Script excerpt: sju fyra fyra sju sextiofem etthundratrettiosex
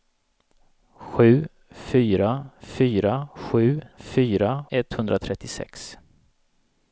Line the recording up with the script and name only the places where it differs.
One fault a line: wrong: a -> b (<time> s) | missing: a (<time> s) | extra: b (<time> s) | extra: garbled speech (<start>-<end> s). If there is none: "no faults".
wrong: sextiofem -> fyra (4.0 s)